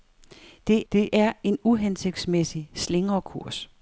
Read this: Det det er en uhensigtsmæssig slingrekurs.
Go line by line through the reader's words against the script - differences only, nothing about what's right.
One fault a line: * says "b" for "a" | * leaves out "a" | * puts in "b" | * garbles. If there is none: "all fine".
all fine